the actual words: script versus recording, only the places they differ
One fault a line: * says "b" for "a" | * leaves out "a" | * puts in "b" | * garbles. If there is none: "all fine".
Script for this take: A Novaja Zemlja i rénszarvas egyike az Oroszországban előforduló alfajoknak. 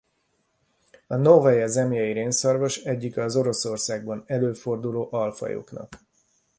all fine